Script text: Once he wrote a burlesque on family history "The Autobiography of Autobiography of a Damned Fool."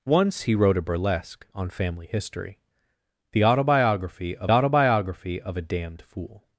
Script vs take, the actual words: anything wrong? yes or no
no